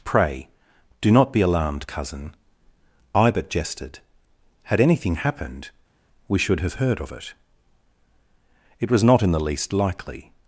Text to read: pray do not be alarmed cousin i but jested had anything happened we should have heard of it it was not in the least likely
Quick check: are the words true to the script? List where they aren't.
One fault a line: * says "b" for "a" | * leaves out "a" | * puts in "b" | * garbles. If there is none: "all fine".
all fine